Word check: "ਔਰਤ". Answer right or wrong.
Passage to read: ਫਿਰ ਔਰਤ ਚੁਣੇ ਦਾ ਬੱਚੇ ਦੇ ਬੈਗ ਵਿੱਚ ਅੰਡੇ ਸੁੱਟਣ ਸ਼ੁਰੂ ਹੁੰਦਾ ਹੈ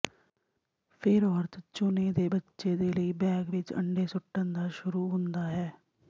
right